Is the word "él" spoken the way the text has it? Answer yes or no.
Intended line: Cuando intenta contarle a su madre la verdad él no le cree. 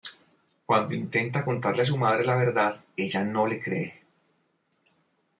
no